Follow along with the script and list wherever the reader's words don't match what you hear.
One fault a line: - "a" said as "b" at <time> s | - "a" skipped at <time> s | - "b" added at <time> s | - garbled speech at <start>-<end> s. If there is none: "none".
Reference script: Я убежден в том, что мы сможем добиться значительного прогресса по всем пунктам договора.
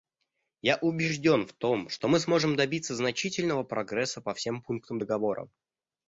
none